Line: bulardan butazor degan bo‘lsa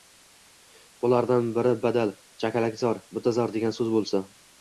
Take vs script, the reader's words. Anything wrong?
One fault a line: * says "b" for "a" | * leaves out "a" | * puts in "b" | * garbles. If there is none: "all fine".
* puts in "biri badal chakalakzor"
* puts in "so‘z"